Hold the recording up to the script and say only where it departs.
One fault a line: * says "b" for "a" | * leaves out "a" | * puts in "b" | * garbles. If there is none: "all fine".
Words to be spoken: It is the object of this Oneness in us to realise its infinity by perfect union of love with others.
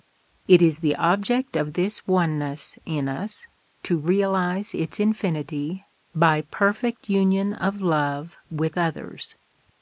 all fine